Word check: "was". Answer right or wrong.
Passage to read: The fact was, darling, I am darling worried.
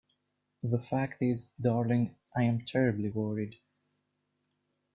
wrong